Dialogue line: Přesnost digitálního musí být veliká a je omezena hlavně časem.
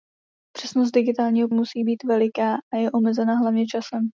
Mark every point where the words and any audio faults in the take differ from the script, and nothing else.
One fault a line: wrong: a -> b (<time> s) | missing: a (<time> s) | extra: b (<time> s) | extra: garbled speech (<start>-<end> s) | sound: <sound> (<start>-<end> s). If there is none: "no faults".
no faults